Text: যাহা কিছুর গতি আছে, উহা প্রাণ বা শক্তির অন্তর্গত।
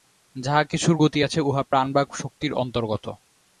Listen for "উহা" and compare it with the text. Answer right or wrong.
right